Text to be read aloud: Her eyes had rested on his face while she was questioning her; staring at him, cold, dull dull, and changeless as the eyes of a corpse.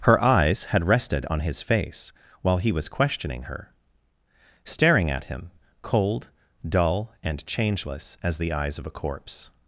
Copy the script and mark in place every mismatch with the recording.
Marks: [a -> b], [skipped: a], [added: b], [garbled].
Her eyes had rested on his face while [she -> he] was questioning her; staring at him, cold, dull [skipped: dull,] and changeless as the eyes of a corpse.